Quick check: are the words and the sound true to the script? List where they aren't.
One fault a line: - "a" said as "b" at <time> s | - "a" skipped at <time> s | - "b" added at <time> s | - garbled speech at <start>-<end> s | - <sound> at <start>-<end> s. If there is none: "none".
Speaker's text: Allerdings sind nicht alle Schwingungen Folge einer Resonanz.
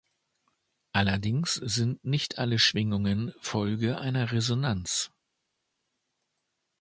none